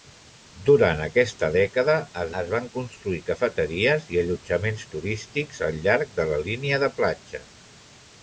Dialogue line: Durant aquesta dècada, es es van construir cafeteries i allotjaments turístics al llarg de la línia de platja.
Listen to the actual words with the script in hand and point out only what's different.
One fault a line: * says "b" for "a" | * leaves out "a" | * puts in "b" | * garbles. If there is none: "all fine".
all fine